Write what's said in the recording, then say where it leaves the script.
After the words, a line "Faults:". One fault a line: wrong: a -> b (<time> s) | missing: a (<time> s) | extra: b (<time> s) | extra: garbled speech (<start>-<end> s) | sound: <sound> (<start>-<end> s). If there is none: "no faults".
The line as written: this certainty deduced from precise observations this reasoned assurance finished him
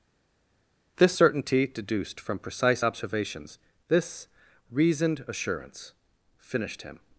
this certainty deduced from precise observations this reasoned assurance finished him
Faults:
no faults